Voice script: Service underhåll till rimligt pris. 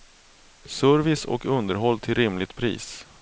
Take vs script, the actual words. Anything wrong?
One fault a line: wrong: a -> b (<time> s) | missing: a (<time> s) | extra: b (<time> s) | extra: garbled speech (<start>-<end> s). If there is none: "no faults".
extra: och (1.2 s)